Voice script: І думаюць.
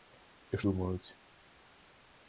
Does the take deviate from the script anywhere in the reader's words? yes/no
no